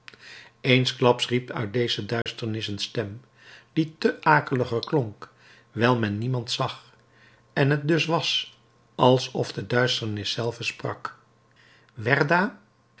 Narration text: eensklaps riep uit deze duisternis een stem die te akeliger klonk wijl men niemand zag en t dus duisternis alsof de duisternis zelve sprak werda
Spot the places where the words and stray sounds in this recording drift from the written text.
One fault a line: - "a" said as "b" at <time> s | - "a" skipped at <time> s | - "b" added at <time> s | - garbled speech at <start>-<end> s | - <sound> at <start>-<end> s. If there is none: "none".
- dropout at 2.2-2.3 s
- "duisternis" said as "was" at 8.1 s